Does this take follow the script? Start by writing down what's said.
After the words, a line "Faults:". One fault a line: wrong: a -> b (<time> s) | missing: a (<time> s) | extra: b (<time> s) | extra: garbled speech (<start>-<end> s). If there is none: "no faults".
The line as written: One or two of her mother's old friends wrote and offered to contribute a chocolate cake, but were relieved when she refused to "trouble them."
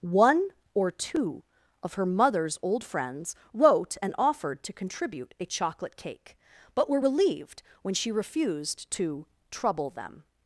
One or two of her mother's old friends wrote and offered to contribute a chocolate cake, but were relieved when she refused to "trouble them."
Faults:
no faults